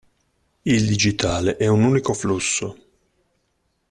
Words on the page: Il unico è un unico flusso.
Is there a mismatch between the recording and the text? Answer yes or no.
yes